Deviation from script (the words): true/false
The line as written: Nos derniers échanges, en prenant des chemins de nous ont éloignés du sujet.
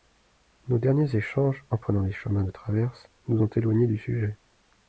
true